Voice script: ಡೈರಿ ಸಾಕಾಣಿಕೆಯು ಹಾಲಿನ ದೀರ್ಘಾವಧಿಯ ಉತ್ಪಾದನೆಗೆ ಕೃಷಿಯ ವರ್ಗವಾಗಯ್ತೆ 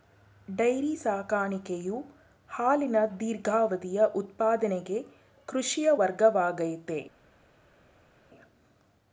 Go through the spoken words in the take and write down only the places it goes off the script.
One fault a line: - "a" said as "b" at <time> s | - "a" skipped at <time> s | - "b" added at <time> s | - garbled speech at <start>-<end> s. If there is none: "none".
none